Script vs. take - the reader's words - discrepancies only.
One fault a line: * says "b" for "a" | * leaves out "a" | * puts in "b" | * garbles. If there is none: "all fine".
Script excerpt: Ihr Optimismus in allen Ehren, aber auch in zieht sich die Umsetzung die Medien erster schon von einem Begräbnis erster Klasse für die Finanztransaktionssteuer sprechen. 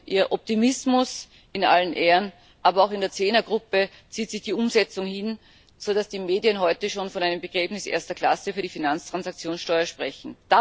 * puts in "der Zehnergruppe"
* puts in "hin sodass"
* says "heute" for "erster"